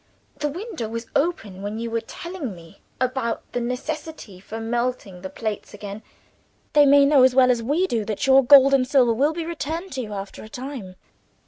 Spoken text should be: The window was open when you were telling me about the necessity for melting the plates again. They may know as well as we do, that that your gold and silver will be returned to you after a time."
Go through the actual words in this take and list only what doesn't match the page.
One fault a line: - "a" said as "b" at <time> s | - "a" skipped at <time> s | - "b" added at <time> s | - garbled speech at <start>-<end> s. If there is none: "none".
- "that" skipped at 8.2 s